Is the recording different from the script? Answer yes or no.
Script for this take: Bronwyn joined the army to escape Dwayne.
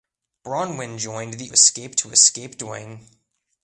yes